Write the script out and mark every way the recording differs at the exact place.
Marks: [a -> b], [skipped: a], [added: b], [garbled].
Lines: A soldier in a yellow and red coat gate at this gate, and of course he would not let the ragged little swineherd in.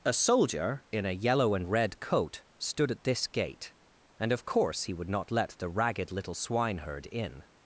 A soldier in a yellow and red coat [gate -> stood] at this gate, and of course he would not let the ragged little swineherd in.